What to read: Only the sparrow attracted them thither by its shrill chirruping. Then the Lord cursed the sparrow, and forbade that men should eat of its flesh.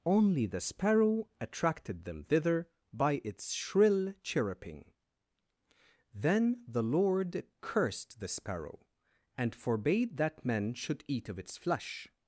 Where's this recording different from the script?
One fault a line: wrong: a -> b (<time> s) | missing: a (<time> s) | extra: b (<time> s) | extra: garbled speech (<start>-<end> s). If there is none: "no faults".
no faults